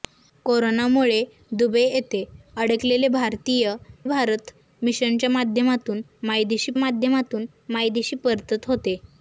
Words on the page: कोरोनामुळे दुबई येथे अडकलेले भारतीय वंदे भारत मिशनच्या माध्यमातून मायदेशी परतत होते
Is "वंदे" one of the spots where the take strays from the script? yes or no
yes